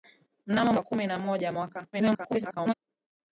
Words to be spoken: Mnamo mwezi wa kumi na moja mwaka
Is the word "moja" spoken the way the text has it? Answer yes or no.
yes